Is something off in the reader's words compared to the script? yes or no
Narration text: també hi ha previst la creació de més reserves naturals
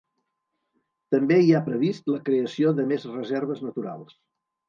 no